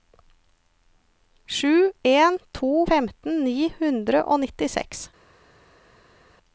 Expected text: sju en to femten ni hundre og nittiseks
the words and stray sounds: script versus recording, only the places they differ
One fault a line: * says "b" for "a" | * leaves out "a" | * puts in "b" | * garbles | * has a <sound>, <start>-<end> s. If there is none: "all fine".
all fine